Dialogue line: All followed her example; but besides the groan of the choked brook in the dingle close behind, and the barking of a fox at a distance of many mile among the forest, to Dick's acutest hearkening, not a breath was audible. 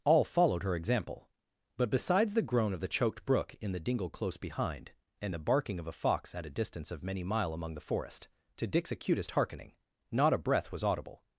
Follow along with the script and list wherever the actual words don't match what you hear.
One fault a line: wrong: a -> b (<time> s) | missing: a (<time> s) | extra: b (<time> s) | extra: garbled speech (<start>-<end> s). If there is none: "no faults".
no faults